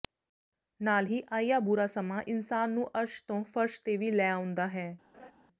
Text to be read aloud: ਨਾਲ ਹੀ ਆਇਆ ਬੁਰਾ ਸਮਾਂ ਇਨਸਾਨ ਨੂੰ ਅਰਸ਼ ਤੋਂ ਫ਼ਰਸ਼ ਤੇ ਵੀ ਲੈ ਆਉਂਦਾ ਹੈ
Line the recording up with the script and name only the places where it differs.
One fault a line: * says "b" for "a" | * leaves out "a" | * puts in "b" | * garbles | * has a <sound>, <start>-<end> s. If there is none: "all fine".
* has a laugh, 5.1-5.3 s